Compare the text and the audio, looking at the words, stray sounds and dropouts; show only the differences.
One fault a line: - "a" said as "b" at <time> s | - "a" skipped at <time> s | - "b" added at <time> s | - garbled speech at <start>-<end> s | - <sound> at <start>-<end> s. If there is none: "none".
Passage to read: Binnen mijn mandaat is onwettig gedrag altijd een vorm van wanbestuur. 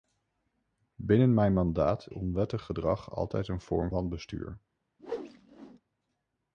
- "is" skipped at 2.1 s
- "van" skipped at 3.9 s
- whoosh at 5.0-5.8 s